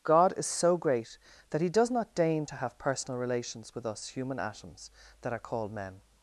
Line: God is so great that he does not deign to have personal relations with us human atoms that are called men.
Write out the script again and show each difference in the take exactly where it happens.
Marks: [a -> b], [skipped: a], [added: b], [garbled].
God is so great that he does not deign to have personal relations with us human atoms that are called men.